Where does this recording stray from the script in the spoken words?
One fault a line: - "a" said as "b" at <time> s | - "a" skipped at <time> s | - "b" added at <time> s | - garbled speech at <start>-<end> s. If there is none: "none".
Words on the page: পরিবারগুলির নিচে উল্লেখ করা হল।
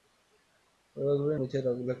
none